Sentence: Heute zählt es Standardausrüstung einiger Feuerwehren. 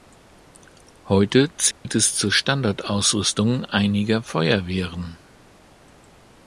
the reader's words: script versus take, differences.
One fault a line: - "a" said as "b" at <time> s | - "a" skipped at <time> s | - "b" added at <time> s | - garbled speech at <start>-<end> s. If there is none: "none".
- "zur" added at 2.1 s